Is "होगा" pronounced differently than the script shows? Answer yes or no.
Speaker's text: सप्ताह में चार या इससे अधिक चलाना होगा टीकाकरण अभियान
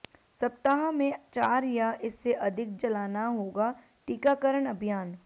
no